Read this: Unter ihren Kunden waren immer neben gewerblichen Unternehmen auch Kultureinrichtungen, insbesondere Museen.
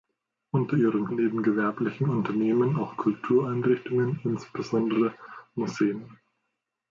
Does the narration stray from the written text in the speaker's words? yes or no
yes